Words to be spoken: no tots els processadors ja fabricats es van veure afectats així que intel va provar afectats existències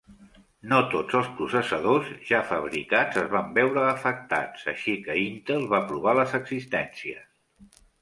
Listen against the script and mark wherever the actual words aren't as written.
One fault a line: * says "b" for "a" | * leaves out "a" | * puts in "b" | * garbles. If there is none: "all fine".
* says "les" for "afectats"